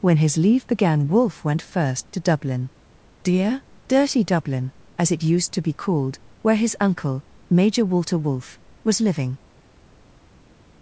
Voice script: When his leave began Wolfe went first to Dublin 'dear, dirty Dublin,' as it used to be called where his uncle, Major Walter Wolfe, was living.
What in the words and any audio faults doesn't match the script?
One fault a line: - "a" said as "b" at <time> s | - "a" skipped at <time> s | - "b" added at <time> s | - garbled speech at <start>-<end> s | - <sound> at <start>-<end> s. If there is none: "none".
none